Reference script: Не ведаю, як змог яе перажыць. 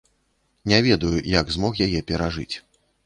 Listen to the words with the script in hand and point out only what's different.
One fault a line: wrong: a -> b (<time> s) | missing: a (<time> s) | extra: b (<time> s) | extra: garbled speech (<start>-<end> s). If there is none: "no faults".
no faults